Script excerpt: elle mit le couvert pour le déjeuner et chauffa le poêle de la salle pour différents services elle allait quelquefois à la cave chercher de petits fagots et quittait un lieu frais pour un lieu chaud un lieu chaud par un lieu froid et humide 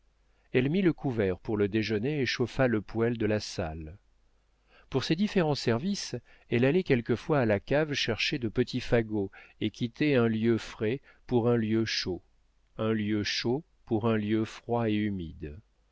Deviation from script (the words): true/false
true